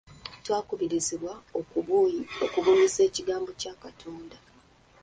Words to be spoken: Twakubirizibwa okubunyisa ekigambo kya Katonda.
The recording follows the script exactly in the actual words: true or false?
true